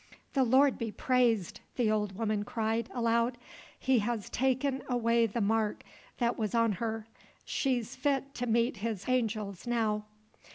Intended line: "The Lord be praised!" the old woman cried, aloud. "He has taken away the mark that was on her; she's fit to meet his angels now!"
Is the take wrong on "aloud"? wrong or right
right